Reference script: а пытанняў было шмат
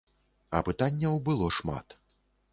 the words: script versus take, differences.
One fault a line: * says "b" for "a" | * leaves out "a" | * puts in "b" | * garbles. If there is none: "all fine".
all fine